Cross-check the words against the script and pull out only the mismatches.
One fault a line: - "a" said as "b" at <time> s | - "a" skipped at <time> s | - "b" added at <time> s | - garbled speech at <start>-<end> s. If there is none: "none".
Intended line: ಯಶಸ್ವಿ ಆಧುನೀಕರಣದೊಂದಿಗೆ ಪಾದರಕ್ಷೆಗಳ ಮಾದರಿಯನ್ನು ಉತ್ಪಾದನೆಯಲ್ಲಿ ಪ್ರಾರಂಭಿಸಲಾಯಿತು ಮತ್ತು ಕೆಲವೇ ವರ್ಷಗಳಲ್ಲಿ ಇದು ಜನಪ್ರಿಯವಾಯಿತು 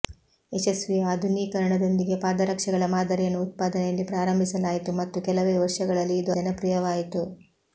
none